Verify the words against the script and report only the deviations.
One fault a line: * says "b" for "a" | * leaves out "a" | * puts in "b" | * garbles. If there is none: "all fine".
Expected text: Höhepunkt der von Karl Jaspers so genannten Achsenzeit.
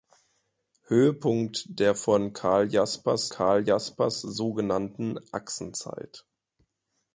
* puts in "Karl Jaspers"